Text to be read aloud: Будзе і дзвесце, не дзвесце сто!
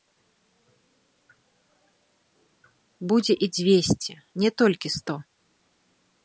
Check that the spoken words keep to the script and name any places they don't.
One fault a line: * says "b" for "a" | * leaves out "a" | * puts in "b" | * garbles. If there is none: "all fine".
* says "толькі" for "дзвесце"